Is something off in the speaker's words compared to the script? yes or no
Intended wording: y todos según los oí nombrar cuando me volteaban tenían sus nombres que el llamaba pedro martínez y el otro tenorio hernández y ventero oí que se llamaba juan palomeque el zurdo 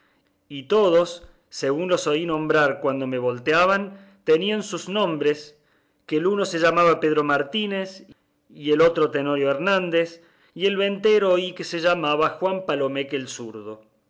yes